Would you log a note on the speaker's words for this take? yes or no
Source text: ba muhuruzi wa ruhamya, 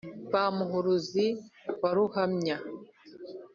no